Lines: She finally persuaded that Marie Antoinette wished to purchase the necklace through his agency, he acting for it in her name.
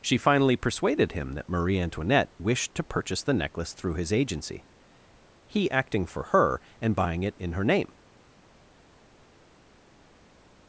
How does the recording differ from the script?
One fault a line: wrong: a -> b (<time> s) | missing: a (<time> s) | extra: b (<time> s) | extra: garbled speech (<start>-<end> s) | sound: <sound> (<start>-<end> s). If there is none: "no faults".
extra: him (1.1 s)
extra: her and buying (6.2 s)